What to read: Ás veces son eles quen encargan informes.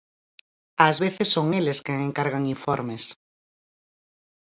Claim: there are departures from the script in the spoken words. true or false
false